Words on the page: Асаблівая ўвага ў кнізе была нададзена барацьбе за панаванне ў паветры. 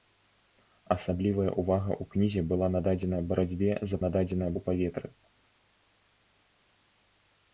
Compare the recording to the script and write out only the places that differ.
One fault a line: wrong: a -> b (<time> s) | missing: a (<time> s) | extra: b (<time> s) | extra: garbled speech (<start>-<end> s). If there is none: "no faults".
wrong: панаванне -> нададзена (4.0 s)